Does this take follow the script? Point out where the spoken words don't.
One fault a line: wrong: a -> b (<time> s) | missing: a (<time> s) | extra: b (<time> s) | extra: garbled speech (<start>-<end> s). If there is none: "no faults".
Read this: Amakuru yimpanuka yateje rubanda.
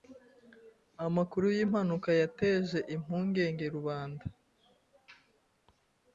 extra: impungenge (3.0 s)